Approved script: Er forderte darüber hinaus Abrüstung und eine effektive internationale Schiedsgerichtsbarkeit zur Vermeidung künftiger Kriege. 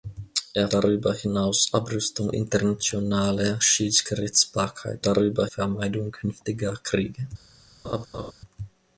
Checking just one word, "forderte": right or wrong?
wrong